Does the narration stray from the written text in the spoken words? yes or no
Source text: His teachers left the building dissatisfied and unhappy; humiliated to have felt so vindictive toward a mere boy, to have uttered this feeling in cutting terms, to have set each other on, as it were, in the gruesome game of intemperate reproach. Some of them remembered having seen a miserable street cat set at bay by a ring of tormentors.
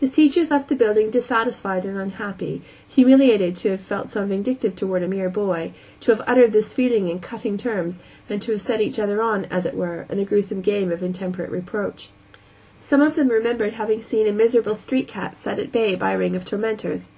yes